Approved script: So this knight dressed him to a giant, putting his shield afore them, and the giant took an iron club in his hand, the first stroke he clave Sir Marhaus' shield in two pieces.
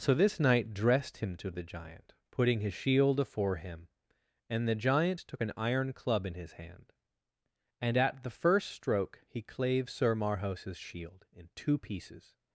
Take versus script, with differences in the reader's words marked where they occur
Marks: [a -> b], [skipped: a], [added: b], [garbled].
So this knight dressed him to [a -> the] giant, putting his shield afore [them, -> him] and the giant took an iron club in his hand, [added: and at] the first stroke he clave Sir Marhaus' shield in two pieces.